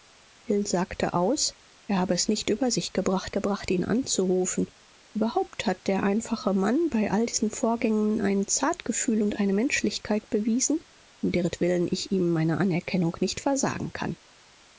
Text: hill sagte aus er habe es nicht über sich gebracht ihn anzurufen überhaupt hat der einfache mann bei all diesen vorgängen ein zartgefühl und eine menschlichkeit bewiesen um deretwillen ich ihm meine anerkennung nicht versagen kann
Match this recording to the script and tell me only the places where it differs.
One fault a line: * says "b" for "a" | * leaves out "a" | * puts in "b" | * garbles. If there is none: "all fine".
* puts in "gebracht"